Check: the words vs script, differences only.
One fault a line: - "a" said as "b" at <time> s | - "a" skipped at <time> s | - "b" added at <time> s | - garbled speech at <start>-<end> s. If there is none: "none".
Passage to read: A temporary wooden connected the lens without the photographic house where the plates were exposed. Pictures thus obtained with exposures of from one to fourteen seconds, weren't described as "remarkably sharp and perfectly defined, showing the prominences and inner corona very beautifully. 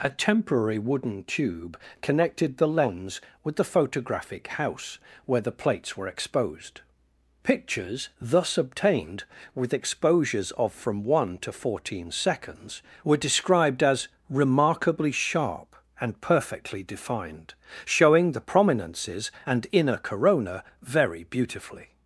- "tube" added at 1.2 s
- "without" said as "with" at 3.4 s
- "weren't" said as "were" at 13.0 s